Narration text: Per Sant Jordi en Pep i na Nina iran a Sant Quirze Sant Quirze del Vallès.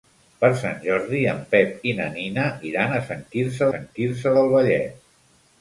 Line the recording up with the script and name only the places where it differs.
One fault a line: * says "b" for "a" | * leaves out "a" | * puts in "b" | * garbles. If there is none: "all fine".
all fine